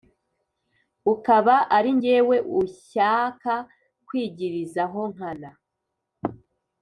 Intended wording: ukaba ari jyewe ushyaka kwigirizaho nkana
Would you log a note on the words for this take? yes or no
no